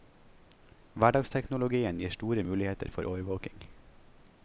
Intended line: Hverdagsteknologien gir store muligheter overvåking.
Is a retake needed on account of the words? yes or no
yes